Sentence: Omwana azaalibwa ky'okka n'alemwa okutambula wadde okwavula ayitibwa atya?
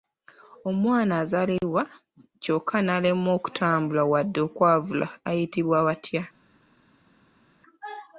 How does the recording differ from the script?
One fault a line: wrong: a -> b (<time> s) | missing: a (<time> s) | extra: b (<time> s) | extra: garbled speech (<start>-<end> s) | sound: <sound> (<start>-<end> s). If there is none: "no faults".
no faults